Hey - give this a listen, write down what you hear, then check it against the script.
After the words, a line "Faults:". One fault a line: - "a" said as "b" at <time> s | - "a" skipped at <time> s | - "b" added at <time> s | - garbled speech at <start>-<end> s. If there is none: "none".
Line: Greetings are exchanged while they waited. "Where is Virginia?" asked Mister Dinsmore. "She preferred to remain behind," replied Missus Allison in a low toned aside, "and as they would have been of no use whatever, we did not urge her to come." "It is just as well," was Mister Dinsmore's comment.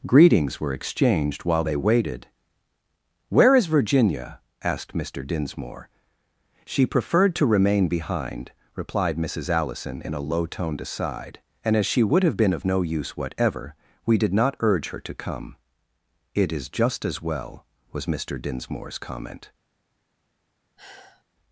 Greetings were exchanged while they waited. "Where is Virginia?" asked Mister Dinsmore. "She preferred to remain behind," replied Missus Allison in a low toned aside, "and as she would have been of no use whatever, we did not urge her to come." "It is just as well," was Mister Dinsmore's comment.
Faults:
- "are" said as "were" at 0.6 s
- "they" said as "she" at 11.8 s